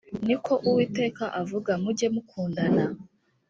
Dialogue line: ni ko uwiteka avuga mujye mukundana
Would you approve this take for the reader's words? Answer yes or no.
yes